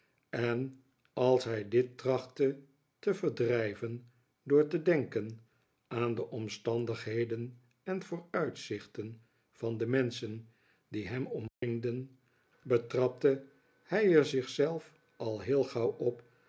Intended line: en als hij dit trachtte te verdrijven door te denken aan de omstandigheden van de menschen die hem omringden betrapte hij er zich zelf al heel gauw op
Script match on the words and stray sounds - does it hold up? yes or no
no